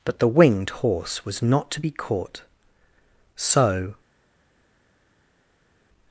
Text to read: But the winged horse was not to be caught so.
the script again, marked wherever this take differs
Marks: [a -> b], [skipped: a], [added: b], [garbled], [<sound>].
But the winged horse was not to be caught so.